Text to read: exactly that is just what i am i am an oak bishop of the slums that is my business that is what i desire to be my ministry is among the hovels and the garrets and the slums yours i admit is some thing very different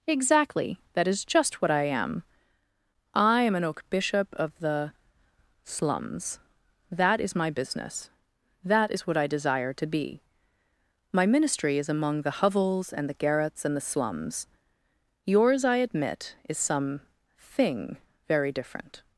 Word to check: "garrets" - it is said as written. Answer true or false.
true